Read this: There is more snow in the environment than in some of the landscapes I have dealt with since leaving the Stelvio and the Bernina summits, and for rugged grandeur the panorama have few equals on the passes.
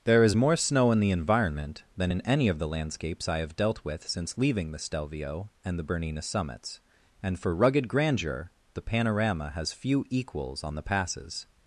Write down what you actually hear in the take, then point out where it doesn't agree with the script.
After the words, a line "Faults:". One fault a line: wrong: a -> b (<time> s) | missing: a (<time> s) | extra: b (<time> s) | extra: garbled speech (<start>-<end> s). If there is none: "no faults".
There is more snow in the environment than in any of the landscapes I have dealt with since leaving the Stelvio and the Bernina summits, and for rugged grandeur the panorama has few equals on the passes.
Faults:
wrong: some -> any (2.2 s)
wrong: have -> has (9.6 s)